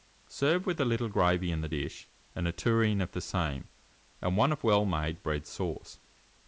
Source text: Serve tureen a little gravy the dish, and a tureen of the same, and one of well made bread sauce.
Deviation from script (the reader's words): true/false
true